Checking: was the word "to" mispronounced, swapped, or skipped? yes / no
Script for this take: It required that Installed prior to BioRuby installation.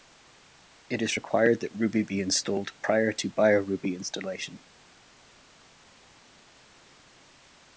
no